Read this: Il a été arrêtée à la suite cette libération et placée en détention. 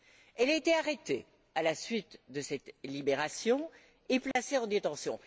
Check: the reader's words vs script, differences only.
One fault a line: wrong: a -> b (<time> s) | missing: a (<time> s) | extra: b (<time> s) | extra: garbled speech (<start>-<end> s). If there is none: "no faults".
wrong: Il -> Elle (0.3 s)
extra: de (2.3 s)